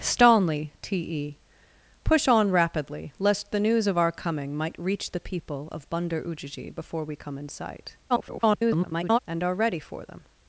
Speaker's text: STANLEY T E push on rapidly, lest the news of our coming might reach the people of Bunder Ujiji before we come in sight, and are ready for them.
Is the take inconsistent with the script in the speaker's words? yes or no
yes